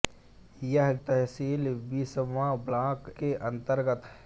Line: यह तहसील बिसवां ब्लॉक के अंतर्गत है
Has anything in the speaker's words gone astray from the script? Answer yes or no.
no